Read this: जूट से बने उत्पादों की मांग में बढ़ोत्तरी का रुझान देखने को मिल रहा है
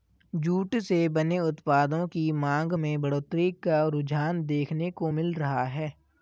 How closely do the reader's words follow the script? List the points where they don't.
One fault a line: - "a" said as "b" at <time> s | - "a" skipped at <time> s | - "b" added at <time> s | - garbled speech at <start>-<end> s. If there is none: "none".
none